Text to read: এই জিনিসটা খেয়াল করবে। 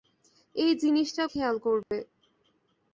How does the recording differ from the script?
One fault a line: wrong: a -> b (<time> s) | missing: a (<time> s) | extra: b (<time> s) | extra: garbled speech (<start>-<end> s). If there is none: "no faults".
no faults